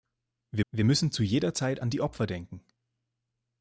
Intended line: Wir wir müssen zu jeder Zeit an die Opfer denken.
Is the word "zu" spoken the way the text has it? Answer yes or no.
yes